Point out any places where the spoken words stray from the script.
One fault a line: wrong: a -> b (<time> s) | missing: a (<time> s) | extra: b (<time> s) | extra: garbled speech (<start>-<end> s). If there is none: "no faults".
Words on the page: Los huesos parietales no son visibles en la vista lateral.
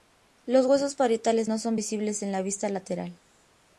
no faults